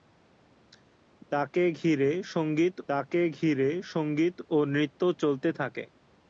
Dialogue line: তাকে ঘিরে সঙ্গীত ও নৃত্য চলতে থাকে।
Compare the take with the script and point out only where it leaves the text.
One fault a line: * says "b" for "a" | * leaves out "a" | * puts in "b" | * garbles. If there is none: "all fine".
* puts in "তাকে ঘিরে সঙ্গীত"